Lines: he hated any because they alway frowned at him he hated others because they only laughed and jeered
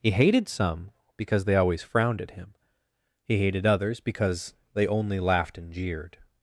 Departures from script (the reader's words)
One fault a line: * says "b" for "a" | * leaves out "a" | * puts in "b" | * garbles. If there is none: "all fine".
* says "some" for "any"
* says "always" for "alway"